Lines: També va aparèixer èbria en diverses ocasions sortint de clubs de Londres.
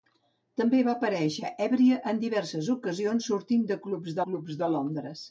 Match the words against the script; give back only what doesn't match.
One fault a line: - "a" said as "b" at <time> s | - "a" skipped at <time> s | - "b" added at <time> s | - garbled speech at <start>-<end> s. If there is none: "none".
- "clubs" added at 4.3 s